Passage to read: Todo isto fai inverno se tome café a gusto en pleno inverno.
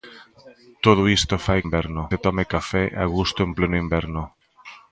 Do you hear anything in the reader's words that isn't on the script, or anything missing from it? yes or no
no